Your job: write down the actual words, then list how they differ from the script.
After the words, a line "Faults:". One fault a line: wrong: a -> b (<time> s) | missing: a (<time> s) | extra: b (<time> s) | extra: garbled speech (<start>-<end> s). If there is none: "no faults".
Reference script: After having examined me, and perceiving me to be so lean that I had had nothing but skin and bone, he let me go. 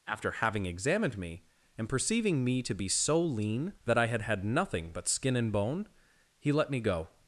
After having examined me, and perceiving me to be so lean that I had had nothing but skin and bone, he let me go.
Faults:
no faults